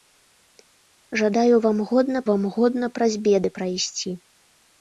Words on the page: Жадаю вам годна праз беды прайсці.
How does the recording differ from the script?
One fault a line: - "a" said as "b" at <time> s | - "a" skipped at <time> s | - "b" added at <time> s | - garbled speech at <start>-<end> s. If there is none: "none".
- "вам годна" added at 2.3 s